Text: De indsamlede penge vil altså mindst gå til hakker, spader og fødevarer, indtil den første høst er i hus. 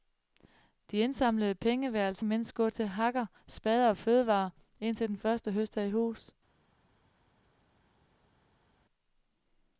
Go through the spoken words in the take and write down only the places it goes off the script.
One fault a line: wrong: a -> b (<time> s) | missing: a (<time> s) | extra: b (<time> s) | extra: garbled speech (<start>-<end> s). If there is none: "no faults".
no faults